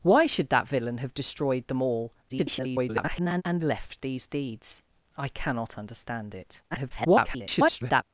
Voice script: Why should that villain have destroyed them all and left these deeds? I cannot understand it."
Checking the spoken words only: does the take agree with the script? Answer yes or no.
no